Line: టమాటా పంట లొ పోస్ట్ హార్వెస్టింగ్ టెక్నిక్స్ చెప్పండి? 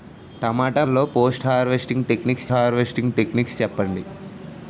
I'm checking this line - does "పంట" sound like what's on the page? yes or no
no